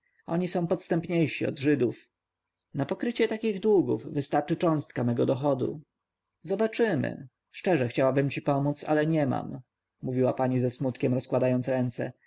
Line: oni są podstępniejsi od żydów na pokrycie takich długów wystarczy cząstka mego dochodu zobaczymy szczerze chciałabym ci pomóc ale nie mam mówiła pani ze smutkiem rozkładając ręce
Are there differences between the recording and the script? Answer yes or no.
no